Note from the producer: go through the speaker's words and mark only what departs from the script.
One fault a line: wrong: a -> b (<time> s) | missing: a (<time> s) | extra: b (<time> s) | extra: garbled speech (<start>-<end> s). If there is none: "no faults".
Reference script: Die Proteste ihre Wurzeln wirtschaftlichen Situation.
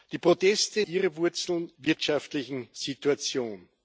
no faults